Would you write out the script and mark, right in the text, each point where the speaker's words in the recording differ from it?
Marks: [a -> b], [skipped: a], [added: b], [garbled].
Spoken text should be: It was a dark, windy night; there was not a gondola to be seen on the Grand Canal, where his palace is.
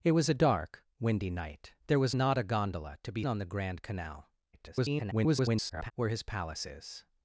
It was a dark, windy night; there was not a gondola to be [skipped: seen] on the Grand Canal, [garbled] where his palace is.